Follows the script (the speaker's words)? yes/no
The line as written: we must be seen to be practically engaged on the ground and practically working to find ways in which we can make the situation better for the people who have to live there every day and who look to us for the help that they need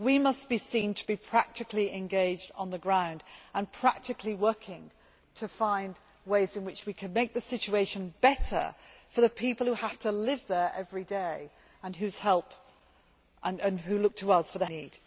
no